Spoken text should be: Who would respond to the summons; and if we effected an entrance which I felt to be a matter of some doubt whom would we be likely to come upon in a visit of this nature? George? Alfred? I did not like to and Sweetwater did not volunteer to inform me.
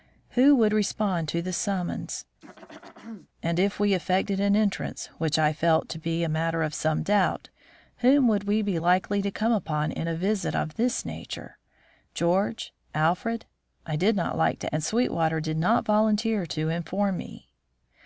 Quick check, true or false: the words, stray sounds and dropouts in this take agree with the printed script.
false